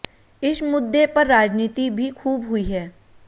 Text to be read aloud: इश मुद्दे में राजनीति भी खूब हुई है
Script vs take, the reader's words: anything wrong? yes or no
yes